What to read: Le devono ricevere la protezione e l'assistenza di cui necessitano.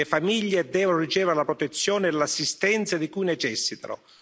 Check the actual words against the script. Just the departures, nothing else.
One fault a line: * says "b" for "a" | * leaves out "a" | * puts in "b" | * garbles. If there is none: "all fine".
* puts in "famiglie"